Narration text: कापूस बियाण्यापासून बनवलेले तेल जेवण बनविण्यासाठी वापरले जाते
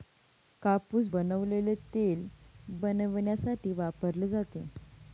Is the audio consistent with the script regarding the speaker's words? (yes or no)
no